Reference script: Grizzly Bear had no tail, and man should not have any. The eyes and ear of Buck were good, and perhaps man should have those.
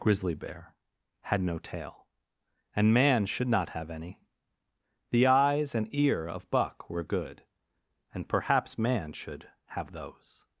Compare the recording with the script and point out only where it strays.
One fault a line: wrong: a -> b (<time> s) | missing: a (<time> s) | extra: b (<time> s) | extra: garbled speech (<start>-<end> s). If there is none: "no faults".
no faults